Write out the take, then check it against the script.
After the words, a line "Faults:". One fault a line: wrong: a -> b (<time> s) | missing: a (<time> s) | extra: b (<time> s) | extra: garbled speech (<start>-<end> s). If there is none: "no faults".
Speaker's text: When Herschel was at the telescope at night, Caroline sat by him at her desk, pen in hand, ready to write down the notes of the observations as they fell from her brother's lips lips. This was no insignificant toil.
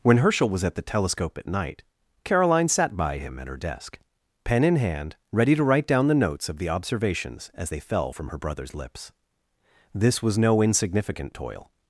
When Herschel was at the telescope at night, Caroline sat by him at her desk, pen in hand, ready to write down the notes of the observations as they fell from her brother's lips. This was no insignificant toil.
Faults:
missing: lips (9.1 s)